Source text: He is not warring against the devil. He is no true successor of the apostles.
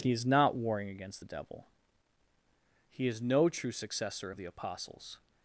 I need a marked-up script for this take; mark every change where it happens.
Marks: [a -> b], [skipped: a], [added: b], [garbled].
He is not warring against the devil. He is no true successor of the apostles.